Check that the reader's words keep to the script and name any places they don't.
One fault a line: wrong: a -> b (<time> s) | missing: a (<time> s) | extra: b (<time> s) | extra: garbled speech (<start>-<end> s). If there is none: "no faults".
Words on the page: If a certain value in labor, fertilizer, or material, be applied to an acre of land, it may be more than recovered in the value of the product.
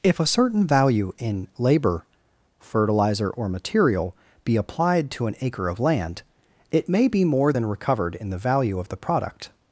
no faults